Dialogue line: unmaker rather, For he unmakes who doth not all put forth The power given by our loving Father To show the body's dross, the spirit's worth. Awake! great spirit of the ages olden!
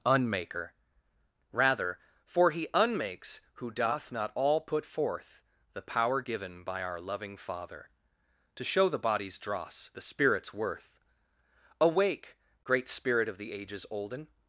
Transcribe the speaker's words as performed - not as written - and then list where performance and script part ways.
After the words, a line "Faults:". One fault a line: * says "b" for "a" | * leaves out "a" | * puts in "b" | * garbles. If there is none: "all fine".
unmaker rather, For he unmakes who doth not all put forth The power given by our loving Father To show the body's dross, the spirit's worth. Awake! great spirit of the ages olden!
Faults:
all fine